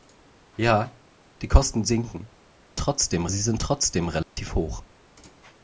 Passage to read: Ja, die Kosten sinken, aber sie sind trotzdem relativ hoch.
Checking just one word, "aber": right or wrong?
wrong